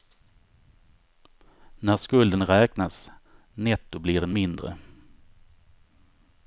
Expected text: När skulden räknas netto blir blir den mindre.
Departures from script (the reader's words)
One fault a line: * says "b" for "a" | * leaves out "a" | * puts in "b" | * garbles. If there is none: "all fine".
* leaves out "blir"